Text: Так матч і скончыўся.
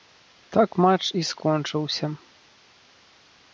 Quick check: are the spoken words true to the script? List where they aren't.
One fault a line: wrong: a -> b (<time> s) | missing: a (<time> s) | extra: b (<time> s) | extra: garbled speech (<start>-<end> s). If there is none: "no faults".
no faults